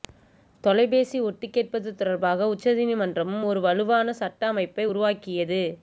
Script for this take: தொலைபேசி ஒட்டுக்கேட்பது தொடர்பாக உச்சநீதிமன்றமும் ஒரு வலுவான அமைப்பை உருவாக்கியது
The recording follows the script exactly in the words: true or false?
false